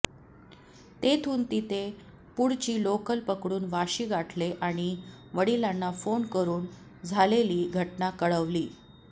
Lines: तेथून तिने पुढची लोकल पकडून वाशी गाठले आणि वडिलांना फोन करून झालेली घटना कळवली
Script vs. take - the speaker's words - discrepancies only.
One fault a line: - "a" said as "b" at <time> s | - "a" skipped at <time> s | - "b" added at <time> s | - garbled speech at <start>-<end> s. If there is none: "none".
none